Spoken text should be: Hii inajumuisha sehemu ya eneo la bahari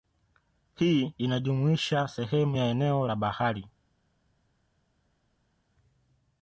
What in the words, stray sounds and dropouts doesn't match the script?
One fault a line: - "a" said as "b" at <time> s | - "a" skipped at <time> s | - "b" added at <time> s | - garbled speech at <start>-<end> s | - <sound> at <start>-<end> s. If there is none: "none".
none